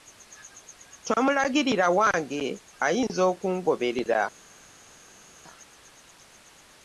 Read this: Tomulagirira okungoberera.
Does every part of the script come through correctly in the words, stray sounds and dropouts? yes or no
no